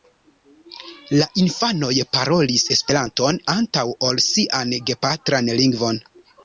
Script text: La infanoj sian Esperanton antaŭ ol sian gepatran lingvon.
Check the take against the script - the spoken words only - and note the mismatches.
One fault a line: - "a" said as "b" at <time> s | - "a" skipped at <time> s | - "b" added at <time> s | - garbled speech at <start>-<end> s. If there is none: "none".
- "sian" said as "parolis" at 2.2 s